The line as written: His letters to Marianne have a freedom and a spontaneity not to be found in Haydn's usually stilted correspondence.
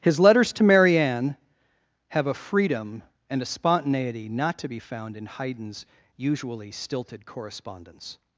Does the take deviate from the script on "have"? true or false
false